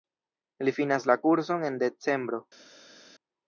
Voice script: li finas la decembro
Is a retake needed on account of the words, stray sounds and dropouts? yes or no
yes